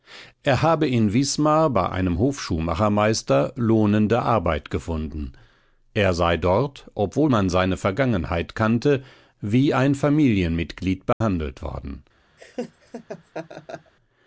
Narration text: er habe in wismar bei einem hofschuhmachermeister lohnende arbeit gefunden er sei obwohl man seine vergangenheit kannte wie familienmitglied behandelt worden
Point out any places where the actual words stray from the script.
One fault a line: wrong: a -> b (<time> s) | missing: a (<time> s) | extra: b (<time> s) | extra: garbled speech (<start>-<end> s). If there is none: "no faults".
extra: dort (6.4 s)
extra: ein (9.7 s)